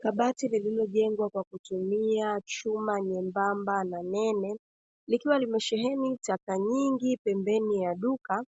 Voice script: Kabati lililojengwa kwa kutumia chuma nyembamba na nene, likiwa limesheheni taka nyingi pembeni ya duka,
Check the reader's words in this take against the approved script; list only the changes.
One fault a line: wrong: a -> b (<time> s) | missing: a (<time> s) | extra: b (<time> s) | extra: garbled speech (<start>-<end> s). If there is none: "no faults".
no faults